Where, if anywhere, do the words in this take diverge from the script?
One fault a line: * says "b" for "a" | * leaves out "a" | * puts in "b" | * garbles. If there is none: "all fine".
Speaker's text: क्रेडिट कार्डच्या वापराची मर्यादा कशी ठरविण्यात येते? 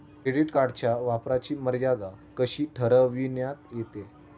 all fine